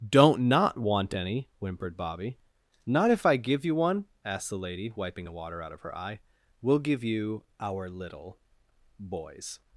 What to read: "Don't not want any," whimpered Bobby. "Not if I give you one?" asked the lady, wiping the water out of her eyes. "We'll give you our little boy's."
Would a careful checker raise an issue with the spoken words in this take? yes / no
yes